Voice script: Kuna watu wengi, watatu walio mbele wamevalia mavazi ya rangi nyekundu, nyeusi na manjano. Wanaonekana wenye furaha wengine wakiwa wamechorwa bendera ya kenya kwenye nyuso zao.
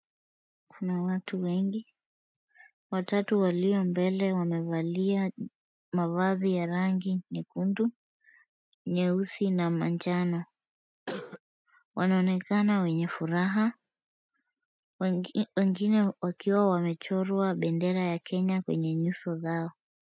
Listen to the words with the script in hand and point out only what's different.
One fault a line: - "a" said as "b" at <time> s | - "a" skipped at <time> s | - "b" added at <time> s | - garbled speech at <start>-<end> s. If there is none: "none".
none